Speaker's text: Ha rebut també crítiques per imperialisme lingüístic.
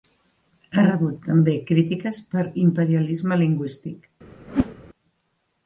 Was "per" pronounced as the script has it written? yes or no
yes